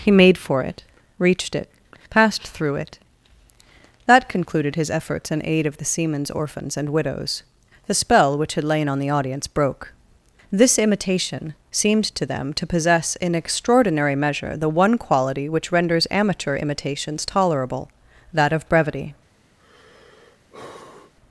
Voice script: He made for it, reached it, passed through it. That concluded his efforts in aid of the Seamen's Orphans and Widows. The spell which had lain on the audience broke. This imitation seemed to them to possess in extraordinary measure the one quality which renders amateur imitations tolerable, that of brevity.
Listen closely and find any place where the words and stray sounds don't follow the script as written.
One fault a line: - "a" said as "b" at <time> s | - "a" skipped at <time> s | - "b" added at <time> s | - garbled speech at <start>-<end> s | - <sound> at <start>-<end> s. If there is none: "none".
- sigh at 19.6-21.1 s